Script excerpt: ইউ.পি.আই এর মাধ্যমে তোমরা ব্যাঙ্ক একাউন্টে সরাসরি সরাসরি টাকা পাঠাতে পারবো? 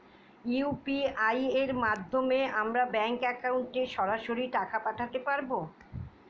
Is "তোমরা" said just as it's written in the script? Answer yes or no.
no